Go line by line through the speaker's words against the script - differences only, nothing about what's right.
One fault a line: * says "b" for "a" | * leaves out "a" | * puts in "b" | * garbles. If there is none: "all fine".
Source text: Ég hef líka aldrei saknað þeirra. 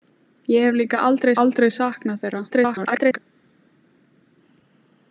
* puts in "aldrei"
* garbles